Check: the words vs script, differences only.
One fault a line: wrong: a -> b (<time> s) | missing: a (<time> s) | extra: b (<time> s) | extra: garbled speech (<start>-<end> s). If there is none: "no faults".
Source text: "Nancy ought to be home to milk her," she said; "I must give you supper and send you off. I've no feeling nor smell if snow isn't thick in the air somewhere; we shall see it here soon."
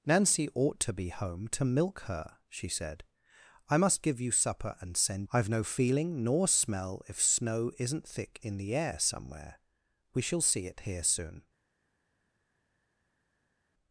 missing: you off (5.3 s)